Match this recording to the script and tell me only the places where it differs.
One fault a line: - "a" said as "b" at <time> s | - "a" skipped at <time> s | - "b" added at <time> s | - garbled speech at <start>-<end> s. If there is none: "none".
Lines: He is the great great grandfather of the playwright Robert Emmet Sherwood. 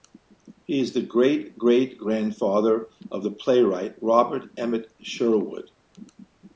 none